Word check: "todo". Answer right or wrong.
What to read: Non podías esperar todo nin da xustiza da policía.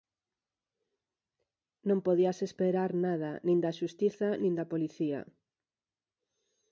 wrong